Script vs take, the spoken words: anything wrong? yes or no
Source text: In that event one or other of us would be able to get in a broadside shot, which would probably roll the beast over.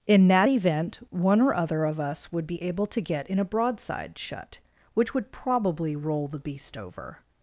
yes